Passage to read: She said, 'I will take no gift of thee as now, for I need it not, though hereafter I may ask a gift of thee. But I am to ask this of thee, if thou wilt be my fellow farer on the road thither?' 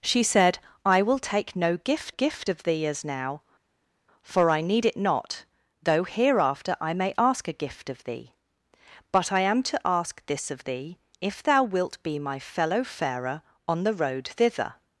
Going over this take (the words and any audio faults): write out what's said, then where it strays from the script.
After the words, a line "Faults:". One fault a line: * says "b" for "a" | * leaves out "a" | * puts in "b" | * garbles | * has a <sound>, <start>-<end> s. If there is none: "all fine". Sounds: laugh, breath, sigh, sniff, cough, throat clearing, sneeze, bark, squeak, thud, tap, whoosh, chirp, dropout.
She said, 'I will take no gift gift of thee as now, for I need it not, though hereafter I may ask a gift of thee. But I am to ask this of thee, if thou wilt be my fellow farer on the road thither?'
Faults:
* puts in "gift"